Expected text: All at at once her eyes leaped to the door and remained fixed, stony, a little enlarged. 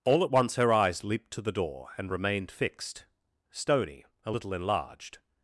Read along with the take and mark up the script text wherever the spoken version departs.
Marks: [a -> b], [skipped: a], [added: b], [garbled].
All at [skipped: at] once her eyes leaped to the door and remained fixed, stony, a little enlarged.